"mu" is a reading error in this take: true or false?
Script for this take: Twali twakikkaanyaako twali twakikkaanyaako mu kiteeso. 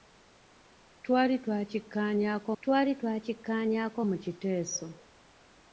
false